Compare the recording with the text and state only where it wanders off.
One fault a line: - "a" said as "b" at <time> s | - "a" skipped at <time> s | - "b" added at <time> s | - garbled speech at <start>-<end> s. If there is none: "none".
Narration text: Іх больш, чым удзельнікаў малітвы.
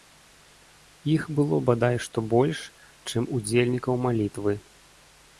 - "было бадай што" added at 1.4 s